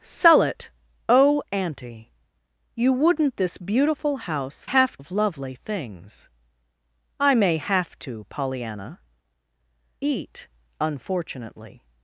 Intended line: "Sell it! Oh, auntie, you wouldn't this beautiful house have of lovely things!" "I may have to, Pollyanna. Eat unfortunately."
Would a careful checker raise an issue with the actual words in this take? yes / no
no